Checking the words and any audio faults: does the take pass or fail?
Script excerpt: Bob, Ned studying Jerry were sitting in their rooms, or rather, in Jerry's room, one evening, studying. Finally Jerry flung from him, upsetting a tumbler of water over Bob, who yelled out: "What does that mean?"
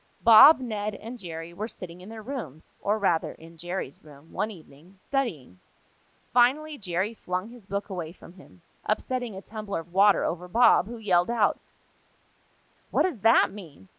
fail